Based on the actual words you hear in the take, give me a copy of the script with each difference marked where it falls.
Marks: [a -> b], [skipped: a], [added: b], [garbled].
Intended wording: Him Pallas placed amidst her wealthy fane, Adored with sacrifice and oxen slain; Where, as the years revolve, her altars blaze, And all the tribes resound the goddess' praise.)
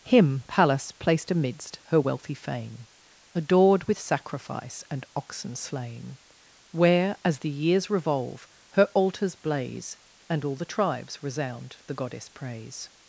Him Pallas placed amidst her wealthy fane, Adored with sacrifice and oxen slain; Where, as the years revolve, her altars blaze, And all the tribes resound the goddess' praise.)